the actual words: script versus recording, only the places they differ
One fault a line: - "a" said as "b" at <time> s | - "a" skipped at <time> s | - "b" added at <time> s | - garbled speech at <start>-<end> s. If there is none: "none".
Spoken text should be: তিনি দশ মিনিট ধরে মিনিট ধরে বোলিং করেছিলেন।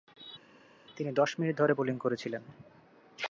- "মিনিট ধরে" skipped at 1.7 s